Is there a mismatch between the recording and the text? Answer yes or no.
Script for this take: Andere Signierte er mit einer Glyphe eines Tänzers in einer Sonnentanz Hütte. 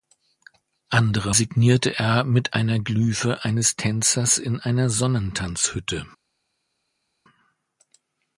no